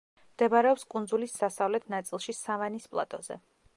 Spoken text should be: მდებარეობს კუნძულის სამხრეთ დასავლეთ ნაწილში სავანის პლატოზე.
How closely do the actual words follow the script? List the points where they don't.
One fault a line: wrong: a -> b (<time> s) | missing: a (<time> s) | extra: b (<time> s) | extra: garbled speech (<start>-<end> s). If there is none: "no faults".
missing: სამხრეთ (1.4 s)